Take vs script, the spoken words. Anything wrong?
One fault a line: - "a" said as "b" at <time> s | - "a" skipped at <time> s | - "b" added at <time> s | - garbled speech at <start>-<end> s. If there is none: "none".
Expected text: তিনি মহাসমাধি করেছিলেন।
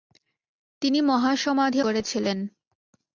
none